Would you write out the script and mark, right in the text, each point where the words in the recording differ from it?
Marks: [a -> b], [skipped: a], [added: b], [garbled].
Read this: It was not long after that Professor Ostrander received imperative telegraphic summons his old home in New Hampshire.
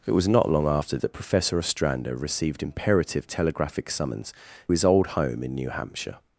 It was not long after that Professor Ostrander received imperative telegraphic summons his old home in New Hampshire.